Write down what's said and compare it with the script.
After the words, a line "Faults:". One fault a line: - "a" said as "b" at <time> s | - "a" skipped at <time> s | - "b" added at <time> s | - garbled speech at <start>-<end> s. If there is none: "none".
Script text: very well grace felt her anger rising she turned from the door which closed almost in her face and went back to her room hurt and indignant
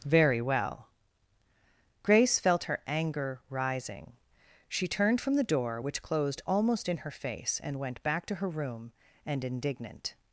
very well grace felt her anger rising she turned from the door which closed almost in her face and went back to her room and indignant
Faults:
- "hurt" skipped at 8.9 s